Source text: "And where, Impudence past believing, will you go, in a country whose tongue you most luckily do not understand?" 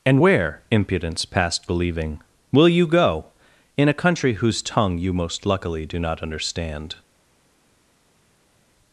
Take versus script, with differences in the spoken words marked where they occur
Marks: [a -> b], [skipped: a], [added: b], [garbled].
"And where, Impudence past believing, will you go, in a country whose tongue you most luckily do not understand?"